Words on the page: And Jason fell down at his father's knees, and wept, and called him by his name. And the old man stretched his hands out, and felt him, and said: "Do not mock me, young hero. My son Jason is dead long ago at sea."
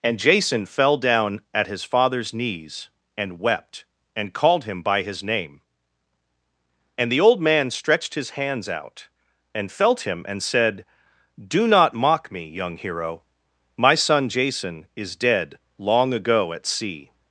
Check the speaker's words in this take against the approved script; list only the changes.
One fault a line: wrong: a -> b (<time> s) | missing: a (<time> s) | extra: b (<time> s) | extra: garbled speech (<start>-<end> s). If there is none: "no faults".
no faults